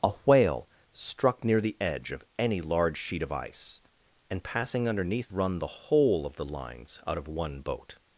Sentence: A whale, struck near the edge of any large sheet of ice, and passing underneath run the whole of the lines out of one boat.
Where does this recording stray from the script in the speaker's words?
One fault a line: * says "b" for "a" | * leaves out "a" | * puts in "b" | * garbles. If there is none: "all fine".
all fine